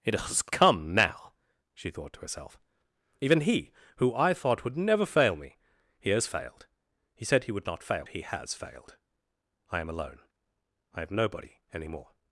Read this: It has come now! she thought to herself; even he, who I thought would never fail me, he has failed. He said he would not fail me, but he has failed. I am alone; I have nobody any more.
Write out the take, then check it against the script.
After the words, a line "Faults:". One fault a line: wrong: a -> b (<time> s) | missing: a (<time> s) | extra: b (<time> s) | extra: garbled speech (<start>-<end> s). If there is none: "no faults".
It has come now! she thought to herself; even he, who I thought would never fail me, he has failed. He said he would not fail he has failed. I am alone; I have nobody any more.
Faults:
missing: me but (8.1 s)